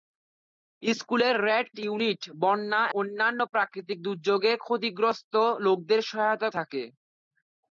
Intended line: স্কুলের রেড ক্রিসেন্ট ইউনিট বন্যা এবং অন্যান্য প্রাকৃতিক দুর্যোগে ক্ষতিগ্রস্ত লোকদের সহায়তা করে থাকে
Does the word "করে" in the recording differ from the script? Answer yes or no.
yes